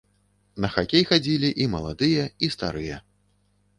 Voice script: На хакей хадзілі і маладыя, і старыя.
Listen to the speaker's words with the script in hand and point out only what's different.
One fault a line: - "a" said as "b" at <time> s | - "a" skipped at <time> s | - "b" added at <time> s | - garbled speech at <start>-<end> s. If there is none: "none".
none